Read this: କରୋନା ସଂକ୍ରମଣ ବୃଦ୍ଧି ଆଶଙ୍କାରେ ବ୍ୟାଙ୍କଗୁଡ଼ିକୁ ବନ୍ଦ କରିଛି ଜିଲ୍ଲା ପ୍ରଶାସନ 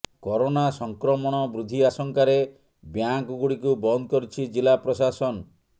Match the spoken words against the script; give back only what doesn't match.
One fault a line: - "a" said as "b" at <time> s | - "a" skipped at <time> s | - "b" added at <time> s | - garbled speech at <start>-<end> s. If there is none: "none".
none